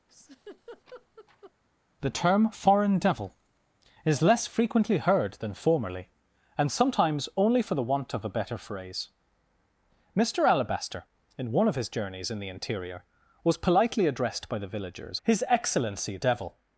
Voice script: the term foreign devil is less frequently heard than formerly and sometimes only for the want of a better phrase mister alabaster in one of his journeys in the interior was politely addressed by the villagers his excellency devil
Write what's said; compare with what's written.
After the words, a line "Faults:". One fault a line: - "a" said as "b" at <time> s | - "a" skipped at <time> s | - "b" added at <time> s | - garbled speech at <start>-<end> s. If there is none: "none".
the term foreign devil is less frequently heard than formerly and sometimes only for the want of a better phrase mister alabaster in one of his journeys in the interior was politely addressed by the villagers his excellency devil
Faults:
none